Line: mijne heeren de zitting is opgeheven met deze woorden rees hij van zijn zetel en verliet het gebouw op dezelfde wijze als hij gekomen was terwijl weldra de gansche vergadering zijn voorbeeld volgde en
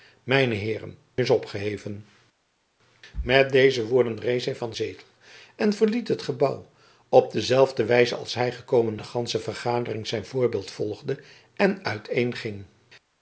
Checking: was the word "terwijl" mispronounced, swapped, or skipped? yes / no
yes